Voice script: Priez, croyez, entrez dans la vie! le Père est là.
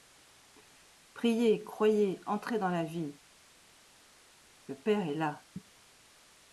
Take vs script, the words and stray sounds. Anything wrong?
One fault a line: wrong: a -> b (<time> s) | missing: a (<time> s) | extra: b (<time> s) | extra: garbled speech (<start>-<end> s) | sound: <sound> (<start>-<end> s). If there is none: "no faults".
no faults